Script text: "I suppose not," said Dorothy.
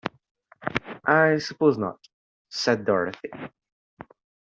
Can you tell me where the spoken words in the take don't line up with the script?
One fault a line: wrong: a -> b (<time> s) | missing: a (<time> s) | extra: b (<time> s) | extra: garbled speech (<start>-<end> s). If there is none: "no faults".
no faults